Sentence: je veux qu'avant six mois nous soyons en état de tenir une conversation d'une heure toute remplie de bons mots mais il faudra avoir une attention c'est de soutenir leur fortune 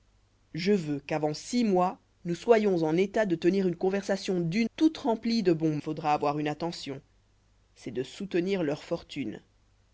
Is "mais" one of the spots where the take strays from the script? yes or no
yes